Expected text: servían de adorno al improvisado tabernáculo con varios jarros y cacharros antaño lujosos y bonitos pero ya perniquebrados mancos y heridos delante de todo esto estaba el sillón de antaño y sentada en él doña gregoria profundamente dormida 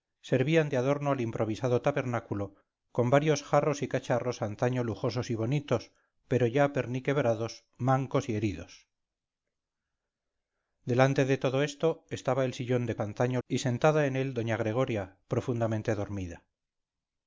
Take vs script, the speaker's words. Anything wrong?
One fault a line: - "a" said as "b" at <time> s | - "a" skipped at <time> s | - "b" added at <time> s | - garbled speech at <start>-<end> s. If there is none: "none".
none